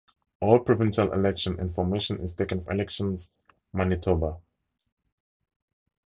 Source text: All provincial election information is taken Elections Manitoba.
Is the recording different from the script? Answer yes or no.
no